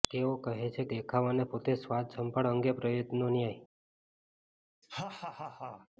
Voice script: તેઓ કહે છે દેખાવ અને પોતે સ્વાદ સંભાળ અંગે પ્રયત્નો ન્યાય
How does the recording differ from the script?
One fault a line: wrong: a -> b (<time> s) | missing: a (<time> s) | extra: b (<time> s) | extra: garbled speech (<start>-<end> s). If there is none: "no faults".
no faults